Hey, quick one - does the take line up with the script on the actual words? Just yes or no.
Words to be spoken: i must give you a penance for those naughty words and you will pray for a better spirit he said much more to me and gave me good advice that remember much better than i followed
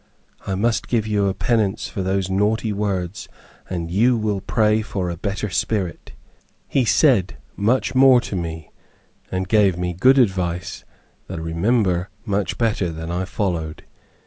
yes